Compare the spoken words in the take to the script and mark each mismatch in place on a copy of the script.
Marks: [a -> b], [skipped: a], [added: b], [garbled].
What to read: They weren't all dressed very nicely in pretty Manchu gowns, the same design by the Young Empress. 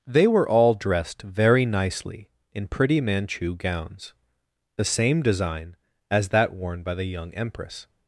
They [weren't -> were] all dressed very nicely in pretty Manchu gowns, the same design [added: as that worn] by the Young Empress.